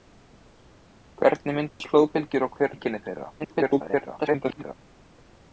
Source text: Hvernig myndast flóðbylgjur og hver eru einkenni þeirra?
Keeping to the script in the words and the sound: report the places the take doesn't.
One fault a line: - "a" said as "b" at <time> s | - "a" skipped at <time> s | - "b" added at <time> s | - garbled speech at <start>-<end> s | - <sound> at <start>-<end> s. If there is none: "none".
- dropout at 1.7-1.8 s
- "eru" skipped at 2.8 s
- garbled speech at 3.4-4.7 s